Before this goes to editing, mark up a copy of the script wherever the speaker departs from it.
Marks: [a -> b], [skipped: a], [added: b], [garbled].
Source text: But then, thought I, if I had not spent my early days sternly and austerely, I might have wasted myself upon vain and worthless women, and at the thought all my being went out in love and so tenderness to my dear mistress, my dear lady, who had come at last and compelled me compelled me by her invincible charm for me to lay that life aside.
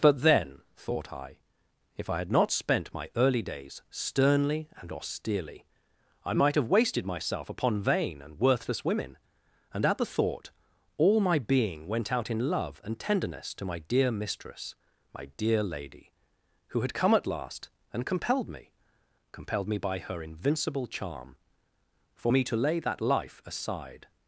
But then, thought I, if I had not spent my early days sternly and austerely, I might have wasted myself upon vain and worthless women, and at the thought all my being went out in love and [skipped: so] tenderness to my dear mistress, my dear lady, who had come at last and compelled me compelled me by her invincible charm for me to lay that life aside.